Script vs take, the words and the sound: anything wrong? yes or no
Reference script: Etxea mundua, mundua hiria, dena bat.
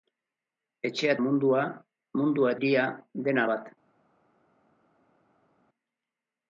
no